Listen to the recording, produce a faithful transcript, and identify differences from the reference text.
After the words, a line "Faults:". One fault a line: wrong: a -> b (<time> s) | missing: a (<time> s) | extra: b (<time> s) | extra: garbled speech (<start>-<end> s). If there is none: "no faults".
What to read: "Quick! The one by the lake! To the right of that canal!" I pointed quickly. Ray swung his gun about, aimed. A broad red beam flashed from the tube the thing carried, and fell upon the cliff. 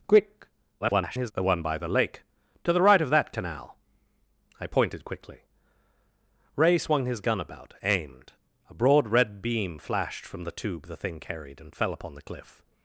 "Quick! [garbled] The one by the lake! To the right of that canal!" I pointed quickly. Ray swung his gun about, aimed. A broad red beam flashed from the tube the thing carried, and fell upon the cliff.
Faults:
extra: garbled speech (0.8-1.3 s)